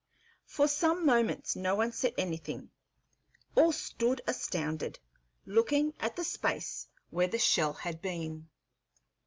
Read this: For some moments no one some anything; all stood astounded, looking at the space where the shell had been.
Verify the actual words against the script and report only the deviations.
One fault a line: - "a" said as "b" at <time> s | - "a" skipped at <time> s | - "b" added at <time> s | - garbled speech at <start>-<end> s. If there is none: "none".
- "some" said as "said" at 1.9 s